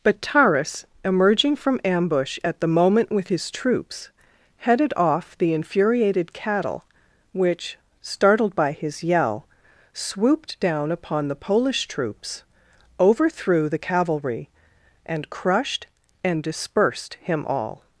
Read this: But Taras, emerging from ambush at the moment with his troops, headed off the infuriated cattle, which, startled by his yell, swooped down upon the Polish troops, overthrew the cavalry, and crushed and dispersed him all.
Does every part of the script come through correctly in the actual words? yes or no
yes